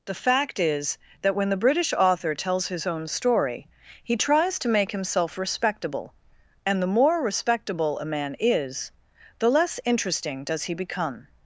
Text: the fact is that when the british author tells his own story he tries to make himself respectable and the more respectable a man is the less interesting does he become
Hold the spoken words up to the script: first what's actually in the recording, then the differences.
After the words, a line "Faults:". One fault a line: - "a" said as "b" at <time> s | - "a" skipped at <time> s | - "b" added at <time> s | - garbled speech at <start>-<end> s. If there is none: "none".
the fact is that when the british author tells his own story he tries to make himself respectable and the more respectable a man is the less interesting does he become
Faults:
none